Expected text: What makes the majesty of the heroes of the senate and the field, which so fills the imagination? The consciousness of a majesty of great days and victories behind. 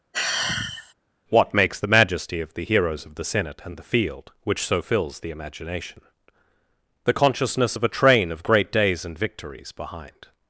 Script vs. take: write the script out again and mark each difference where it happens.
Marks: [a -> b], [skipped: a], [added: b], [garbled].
What makes the majesty of the heroes of the senate and the field, which so fills the imagination? The consciousness of a [majesty -> train] of great days and victories behind.